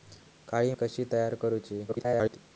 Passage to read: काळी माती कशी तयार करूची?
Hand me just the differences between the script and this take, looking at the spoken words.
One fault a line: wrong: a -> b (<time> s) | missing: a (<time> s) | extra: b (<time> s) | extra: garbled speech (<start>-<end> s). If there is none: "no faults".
missing: माती (0.7 s)
extra: garbled speech (1.9-2.4 s)